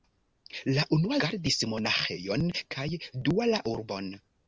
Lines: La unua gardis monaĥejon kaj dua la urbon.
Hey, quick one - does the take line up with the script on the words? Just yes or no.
yes